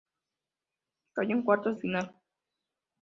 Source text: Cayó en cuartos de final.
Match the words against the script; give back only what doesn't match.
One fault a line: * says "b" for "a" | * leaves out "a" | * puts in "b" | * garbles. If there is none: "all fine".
* leaves out "de"